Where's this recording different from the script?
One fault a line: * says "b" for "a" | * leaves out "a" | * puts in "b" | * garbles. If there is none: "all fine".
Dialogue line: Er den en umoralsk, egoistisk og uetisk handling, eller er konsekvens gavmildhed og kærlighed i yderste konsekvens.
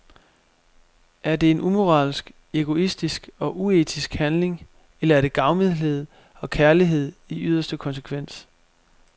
* says "det" for "den"
* says "det" for "konsekvens"